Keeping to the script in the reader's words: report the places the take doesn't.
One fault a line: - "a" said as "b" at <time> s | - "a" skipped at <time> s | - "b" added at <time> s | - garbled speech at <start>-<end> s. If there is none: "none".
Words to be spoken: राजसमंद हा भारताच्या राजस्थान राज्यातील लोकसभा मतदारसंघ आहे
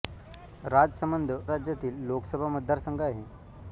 - "हा भारताच्या राजस्थान" skipped at 1.3 s